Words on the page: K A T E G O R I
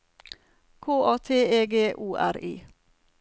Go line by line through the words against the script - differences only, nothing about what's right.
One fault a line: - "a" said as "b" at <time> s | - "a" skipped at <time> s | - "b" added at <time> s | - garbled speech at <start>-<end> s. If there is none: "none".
none